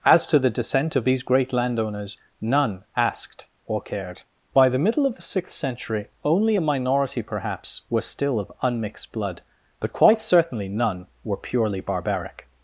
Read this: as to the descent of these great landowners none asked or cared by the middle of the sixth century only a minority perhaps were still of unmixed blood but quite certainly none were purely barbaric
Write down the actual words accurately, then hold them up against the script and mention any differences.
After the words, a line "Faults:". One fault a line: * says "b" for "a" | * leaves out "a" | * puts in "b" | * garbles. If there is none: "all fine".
as to the descent of these great landowners none asked or cared by the middle of the sixth century only a minority perhaps were still of unmixed blood but quite certainly none were purely barbaric
Faults:
all fine